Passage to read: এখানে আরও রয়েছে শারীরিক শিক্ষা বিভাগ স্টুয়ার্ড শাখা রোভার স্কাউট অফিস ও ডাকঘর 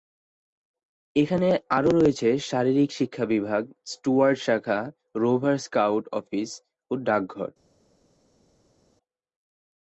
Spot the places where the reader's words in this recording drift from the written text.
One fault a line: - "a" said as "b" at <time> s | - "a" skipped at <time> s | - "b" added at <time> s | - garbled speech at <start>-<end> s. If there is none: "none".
none